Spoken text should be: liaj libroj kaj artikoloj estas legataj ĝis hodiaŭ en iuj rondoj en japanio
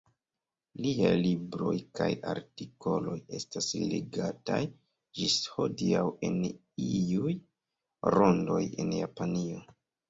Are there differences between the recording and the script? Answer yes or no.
no